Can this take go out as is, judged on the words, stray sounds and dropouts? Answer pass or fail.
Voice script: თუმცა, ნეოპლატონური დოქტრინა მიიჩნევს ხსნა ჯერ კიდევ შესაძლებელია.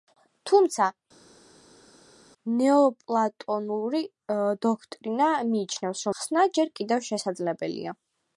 pass